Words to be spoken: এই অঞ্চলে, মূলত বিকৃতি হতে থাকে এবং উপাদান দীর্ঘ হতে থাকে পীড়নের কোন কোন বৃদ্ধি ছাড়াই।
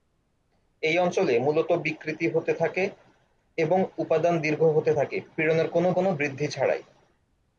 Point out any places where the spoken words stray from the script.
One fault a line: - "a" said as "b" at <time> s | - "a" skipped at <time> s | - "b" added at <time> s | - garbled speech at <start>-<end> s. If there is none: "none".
none